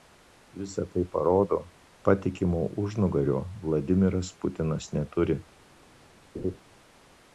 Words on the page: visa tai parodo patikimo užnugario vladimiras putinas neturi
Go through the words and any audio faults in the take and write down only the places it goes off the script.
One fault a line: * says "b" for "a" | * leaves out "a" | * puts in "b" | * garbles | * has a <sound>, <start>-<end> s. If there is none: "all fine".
* has a laugh, 6.3-6.6 s